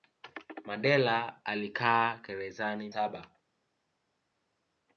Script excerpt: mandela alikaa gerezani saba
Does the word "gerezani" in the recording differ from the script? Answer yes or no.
no